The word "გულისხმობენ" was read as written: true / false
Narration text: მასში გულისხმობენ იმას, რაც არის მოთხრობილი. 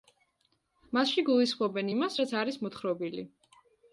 true